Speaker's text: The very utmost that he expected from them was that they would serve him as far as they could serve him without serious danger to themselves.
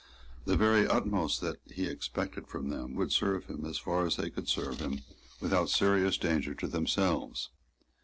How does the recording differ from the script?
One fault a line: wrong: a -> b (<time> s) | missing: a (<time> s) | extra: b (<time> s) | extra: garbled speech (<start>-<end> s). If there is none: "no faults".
missing: was that they (3.0 s)